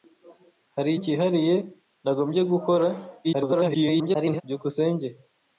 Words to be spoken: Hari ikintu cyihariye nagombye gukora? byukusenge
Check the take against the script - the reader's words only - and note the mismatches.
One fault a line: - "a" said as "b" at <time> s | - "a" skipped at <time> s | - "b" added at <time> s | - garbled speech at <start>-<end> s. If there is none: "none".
- "ikintu" skipped at 0.9 s
- garbled speech at 3.2-4.4 s